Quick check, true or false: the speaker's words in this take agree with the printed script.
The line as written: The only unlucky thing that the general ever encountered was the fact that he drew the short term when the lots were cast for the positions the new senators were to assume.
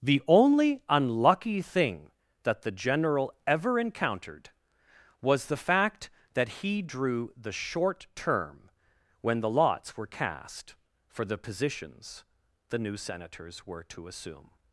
true